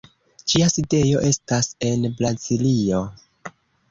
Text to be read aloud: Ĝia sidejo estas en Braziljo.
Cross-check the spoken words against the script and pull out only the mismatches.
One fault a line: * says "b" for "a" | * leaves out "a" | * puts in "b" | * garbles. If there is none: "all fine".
all fine